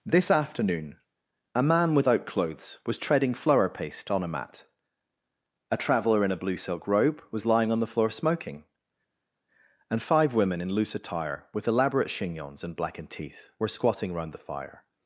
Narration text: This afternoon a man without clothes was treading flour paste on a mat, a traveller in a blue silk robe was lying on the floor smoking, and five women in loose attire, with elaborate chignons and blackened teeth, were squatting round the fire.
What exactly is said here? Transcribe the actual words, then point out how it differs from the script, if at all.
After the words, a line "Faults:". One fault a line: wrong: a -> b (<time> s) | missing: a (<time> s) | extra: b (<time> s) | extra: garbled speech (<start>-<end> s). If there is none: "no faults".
This afternoon a man without clothes was treading flour paste on a mat, a traveller in a blue silk robe was lying on the floor smoking, and five women in loose attire, with elaborate chignons and blackened teeth, were squatting round the fire.
Faults:
no faults